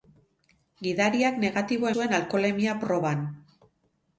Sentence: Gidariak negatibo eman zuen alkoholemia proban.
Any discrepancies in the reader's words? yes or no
yes